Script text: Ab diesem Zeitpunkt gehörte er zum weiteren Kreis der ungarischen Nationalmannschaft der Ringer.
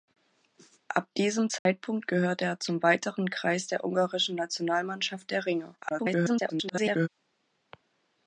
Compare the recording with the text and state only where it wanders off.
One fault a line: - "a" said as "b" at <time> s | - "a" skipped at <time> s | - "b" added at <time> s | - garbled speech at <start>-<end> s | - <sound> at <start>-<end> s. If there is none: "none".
- dropout at 1.6-1.7 s
- garbled speech at 5.8-7.1 s